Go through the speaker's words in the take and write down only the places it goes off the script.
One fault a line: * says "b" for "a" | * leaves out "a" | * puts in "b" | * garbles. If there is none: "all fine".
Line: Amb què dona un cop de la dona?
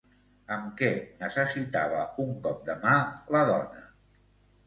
* says "necessitava" for "dona"
* puts in "mà"